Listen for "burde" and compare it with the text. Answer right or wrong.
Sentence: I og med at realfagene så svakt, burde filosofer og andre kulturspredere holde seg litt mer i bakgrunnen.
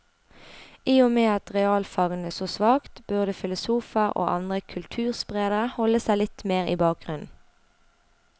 right